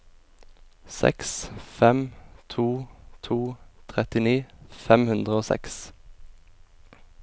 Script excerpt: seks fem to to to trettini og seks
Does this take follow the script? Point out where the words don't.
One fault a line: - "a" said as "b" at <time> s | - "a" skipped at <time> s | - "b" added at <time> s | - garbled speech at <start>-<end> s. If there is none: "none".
- "to trettini" said as "trettini fem hundre" at 3.9 s